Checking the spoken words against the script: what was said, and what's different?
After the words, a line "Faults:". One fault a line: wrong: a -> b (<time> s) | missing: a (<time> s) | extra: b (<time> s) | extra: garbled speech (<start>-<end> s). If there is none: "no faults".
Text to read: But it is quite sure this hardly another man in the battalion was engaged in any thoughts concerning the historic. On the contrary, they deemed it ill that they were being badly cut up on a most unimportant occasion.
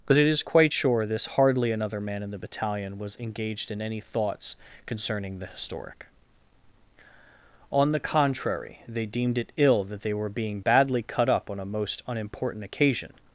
But it is quite sure this hardly another man in the battalion was engaged in any thoughts concerning the historic. On the contrary, they deemed it ill that they were being badly cut up on a most unimportant occasion.
Faults:
no faults